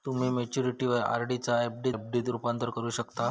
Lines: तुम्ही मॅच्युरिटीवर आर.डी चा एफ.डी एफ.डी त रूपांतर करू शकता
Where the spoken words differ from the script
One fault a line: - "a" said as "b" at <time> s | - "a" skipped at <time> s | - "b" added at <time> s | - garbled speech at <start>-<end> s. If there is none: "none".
none